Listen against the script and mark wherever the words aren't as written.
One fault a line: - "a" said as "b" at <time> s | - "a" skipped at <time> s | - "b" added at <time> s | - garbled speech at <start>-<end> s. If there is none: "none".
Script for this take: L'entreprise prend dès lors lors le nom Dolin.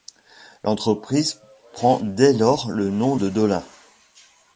- "lors" skipped at 2.7 s
- "de" added at 3.1 s